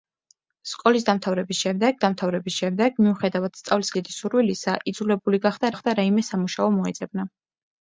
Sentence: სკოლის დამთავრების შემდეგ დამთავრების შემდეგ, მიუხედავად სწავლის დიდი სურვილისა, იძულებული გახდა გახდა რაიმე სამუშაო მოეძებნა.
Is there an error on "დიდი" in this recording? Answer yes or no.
no